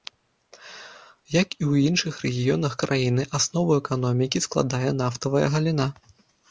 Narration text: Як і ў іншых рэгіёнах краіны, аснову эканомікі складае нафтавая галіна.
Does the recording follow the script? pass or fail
pass